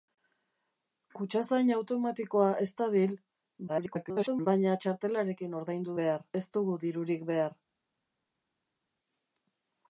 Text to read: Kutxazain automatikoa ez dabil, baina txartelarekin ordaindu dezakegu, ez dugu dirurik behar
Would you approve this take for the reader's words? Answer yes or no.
no